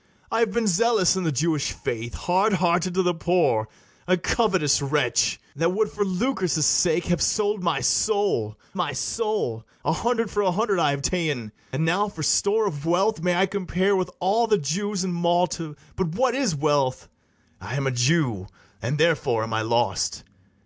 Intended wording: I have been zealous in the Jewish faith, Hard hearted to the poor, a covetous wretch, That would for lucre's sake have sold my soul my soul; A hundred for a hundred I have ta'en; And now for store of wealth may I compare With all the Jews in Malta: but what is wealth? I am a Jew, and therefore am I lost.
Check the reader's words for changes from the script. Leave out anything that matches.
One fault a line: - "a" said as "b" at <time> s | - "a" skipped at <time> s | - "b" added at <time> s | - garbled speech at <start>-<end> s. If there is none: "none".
none